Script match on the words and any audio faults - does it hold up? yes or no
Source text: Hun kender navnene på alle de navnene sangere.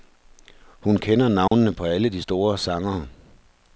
no